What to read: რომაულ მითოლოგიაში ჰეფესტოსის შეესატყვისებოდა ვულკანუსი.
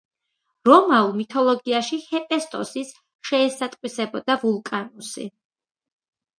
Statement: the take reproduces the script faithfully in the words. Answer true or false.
true